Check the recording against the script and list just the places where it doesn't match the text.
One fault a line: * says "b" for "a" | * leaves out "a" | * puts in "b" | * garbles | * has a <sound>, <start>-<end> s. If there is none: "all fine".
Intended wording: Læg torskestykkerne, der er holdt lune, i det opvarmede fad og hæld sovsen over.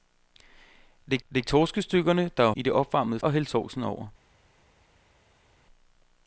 * puts in "læg"
* leaves out "holdt lune"
* leaves out "fad"